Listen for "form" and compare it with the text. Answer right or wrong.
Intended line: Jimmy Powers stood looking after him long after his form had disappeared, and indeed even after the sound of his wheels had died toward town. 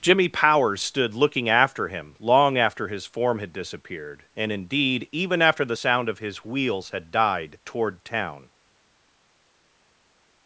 right